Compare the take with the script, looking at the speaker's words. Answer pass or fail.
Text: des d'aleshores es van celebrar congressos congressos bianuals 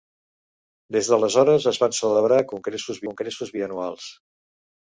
pass